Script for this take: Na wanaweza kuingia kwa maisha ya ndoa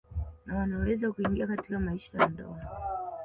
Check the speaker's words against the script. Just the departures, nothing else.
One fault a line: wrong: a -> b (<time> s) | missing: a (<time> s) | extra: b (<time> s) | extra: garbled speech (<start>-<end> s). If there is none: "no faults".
wrong: kwa -> katika (1.5 s)